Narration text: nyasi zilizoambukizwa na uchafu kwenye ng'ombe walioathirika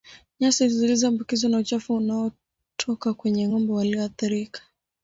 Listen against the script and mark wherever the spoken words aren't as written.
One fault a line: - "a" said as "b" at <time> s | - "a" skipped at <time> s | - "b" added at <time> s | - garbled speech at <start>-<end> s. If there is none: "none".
- "unaotoka" added at 1.9 s